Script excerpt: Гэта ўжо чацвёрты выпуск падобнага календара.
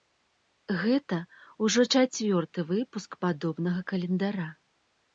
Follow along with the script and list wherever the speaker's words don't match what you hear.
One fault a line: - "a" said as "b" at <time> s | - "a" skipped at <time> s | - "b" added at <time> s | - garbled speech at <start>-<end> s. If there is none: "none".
none